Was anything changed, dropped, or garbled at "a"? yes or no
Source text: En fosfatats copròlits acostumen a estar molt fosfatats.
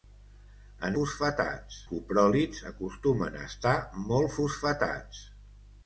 no